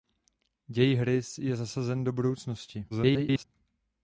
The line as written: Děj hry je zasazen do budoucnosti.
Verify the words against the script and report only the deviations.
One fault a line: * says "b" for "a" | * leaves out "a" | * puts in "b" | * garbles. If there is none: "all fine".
* garbles